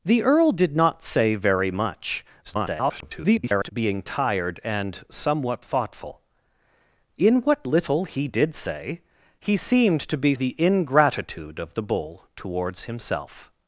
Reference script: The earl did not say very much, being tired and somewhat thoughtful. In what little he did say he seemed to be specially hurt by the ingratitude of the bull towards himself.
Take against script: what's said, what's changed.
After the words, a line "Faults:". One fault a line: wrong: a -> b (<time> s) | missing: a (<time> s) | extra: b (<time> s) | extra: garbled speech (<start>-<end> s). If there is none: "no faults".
The earl did not say very much, [garbled] being tired and somewhat thoughtful. In what little he did say he seemed to be the ingratitude of the bull towards himself.
Faults:
extra: garbled speech (2.4-3.7 s)
missing: specially hurt by (10.3 s)